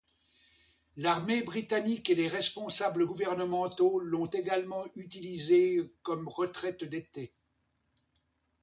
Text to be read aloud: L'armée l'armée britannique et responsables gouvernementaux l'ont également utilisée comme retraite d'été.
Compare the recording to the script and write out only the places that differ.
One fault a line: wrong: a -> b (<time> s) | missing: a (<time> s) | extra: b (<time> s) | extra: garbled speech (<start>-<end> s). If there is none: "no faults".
missing: l'armée (1.4 s)
extra: les (2.1 s)